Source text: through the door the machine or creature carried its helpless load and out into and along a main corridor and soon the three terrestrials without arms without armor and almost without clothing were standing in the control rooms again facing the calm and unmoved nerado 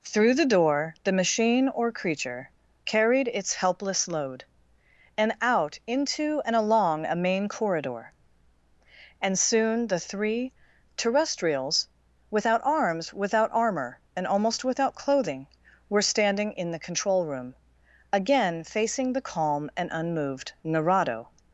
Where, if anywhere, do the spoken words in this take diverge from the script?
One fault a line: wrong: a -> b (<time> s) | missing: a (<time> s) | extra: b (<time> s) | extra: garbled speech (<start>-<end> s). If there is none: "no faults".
wrong: rooms -> room (17.3 s)